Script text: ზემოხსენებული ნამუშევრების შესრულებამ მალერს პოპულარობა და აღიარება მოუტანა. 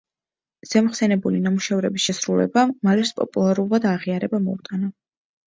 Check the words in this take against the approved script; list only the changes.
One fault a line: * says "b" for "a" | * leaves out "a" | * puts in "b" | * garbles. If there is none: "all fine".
all fine